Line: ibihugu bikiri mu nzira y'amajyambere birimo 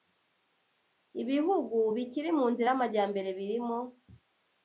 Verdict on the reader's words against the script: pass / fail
pass